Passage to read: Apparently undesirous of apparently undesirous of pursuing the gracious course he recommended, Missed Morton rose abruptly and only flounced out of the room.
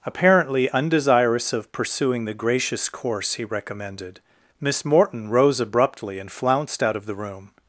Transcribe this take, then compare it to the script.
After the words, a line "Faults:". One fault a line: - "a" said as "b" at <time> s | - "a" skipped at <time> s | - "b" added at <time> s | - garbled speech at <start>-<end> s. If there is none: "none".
Apparently undesirous of pursuing the gracious course he recommended, Miss Morton rose abruptly and flounced out of the room.
Faults:
- "apparently undesirous of" skipped at 1.7 s
- "Missed" said as "Miss" at 4.6 s
- "only" skipped at 6.3 s